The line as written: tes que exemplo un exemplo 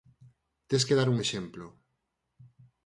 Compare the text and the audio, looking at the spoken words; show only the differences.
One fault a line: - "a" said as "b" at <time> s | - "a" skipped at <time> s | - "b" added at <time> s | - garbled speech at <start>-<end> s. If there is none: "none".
- "exemplo" said as "dar" at 1.0 s